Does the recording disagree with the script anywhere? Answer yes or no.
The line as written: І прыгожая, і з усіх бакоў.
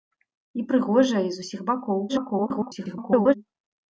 yes